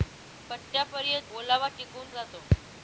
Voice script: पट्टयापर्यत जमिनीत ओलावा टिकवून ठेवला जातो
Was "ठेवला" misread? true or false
true